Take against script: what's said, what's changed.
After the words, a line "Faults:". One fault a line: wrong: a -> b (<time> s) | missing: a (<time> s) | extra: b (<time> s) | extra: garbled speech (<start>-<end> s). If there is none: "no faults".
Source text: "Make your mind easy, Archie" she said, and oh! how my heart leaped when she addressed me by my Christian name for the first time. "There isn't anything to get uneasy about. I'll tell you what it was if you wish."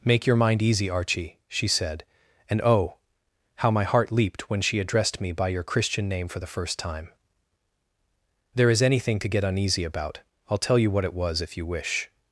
"Make your mind easy, Archie" she said, and oh! how my heart leaped when she addressed me by your Christian name for the first time. "There is anything to get uneasy about. I'll tell you what it was if you wish."
Faults:
wrong: my -> your (5.5 s)
wrong: isn't -> is (8.7 s)